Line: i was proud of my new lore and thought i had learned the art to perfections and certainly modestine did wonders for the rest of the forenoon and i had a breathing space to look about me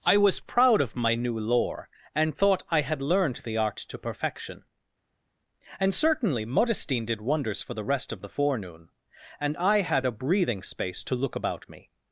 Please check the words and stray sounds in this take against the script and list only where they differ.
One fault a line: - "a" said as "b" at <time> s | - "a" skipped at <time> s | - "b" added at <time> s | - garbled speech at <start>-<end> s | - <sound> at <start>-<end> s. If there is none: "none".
- "perfections" said as "perfection" at 4.0 s